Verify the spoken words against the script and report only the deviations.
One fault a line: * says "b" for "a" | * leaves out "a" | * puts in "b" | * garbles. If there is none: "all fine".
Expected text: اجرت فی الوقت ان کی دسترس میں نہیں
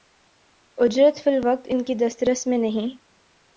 all fine